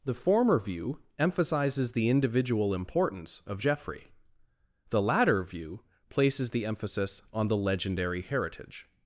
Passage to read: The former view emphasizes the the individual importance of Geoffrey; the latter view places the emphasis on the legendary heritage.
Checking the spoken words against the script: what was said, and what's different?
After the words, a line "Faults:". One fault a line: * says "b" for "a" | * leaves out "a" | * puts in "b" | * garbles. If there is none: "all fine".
The former view emphasizes the individual importance of Geoffrey; the latter view places the emphasis on the legendary heritage.
Faults:
* leaves out "the"